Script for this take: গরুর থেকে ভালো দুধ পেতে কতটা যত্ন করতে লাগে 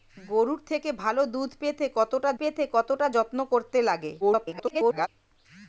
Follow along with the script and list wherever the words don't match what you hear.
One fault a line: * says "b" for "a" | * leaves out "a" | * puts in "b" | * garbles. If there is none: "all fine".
* puts in "পেতে কতটা"
* garbles